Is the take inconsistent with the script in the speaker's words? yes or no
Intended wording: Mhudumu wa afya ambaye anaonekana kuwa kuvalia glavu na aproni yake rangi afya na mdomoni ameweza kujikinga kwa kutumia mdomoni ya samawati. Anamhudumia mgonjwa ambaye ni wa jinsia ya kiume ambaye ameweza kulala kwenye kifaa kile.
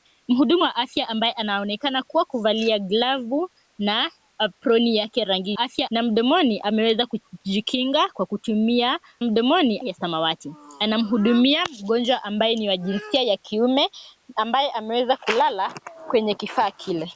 no